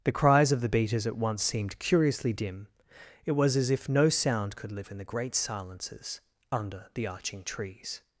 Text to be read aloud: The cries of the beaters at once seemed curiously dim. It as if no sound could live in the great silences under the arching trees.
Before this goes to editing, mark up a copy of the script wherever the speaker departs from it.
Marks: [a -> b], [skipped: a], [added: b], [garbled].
The cries of the beaters at once seemed curiously dim. It [added: was] as if no sound could live in the great silences under the arching trees.